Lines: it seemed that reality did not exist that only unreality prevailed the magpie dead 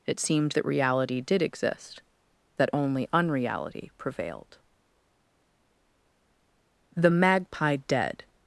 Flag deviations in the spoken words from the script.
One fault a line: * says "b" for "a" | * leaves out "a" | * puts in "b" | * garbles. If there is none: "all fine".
* leaves out "not"